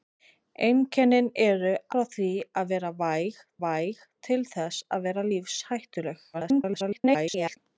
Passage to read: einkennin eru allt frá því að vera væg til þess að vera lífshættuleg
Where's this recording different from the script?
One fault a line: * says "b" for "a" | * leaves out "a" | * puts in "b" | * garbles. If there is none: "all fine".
* leaves out "allt"
* puts in "væg"
* garbles